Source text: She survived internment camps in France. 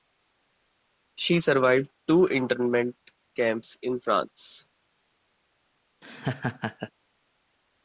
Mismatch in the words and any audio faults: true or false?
true